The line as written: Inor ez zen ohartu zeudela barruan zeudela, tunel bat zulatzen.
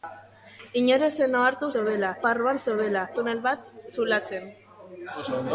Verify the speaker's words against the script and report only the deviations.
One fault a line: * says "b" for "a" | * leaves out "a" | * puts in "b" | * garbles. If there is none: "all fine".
all fine